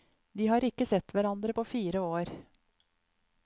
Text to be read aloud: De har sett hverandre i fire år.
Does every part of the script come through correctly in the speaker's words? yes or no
no